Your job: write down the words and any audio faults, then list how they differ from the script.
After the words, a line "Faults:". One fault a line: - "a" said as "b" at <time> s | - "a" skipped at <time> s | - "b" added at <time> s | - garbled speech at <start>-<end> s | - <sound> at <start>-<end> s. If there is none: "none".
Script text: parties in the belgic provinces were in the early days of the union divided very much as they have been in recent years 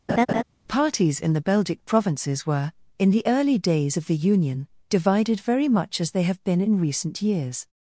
parties in the belgic provinces were in the early days of the union divided very much as they have been in recent years
Faults:
- laugh at 0.1-0.4 s